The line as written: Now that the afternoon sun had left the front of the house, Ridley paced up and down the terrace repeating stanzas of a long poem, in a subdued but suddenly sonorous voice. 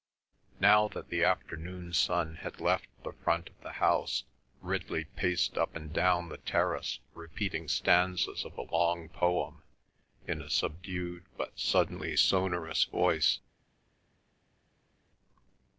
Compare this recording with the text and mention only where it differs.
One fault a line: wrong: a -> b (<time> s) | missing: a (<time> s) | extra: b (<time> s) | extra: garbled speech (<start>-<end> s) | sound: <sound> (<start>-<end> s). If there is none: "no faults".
no faults